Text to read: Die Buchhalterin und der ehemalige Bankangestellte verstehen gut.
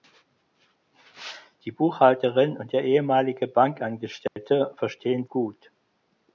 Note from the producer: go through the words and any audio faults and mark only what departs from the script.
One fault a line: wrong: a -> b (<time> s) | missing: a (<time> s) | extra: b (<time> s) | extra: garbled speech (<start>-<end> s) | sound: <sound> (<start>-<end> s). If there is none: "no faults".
sound: dropout (4.3-4.4 s)